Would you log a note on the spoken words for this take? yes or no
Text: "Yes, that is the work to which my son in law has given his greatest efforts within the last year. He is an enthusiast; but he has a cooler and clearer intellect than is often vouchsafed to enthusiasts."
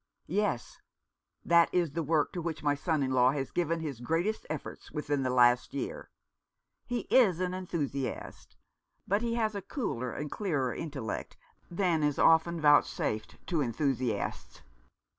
no